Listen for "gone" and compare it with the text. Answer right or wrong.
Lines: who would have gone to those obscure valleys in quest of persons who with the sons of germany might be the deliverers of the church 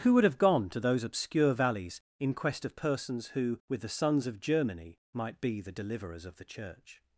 right